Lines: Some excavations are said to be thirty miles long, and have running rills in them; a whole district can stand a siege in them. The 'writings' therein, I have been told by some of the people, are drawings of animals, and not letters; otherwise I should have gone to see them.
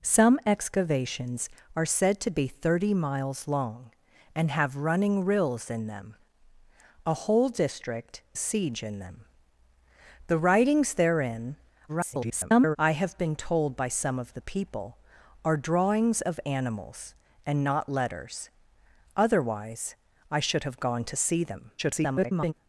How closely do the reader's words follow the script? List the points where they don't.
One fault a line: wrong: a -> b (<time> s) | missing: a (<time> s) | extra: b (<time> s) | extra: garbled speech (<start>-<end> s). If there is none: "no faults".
missing: can stand (8.2 s)
extra: garbled speech (11.9-12.8 s)
extra: garbled speech (21.8-22.5 s)